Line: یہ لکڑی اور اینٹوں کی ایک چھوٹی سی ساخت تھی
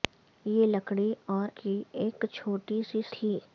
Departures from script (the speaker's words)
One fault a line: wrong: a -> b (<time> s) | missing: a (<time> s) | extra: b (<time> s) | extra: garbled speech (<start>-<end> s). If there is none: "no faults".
missing: اینٹوں (1.5 s)
missing: ساخت (3.0 s)